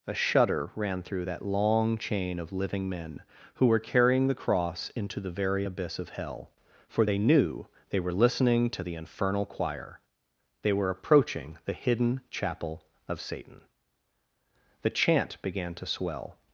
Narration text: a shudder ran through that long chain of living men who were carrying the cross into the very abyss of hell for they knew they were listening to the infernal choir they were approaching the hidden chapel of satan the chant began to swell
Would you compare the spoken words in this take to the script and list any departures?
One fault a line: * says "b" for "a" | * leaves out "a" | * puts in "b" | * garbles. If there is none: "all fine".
all fine